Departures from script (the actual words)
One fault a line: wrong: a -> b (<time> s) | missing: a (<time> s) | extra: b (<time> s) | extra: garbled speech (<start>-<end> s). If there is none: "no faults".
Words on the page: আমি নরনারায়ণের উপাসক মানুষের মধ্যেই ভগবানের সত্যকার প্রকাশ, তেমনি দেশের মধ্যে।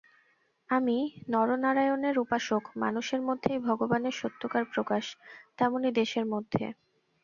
no faults